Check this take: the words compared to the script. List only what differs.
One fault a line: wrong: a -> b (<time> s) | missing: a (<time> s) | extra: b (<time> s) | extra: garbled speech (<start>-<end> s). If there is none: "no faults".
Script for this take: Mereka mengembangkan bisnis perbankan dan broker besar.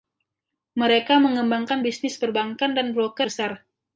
no faults